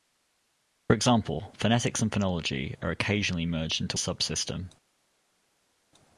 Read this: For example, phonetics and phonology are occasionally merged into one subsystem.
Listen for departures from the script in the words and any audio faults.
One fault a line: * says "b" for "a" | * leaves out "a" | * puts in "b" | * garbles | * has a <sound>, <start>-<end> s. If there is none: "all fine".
* leaves out "one"